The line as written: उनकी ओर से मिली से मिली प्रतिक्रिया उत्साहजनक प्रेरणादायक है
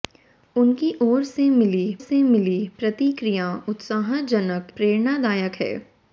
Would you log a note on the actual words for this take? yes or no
no